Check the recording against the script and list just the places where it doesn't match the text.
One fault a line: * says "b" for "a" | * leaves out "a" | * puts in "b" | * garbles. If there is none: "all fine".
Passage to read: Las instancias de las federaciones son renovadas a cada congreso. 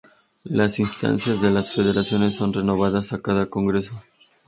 all fine